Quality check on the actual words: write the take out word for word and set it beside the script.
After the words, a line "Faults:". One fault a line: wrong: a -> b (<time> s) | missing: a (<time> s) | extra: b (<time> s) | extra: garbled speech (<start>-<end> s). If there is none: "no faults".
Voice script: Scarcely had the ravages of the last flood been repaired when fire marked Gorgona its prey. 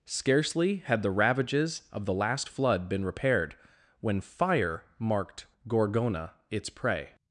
Scarcely had the ravages of the last flood been repaired when fire marked Gorgona its prey.
Faults:
no faults